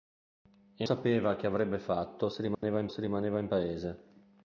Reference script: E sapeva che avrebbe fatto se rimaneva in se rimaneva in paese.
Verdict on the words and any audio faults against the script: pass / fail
fail